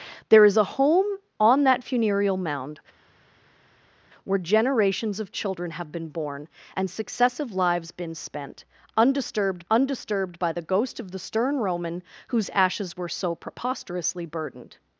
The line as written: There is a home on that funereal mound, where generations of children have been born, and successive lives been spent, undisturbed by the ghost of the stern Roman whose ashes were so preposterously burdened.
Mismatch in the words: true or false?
true